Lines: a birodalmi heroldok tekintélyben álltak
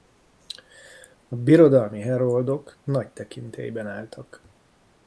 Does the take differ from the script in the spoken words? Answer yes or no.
yes